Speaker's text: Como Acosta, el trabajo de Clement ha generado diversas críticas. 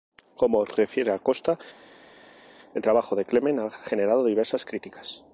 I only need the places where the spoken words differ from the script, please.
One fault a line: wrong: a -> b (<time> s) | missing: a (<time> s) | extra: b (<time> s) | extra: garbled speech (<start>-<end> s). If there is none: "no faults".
extra: refiere (0.7 s)